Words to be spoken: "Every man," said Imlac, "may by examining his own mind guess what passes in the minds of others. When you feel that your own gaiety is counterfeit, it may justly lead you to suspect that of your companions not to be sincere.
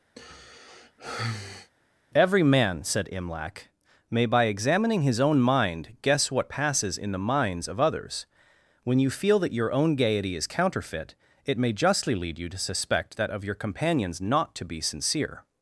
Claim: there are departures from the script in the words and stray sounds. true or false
true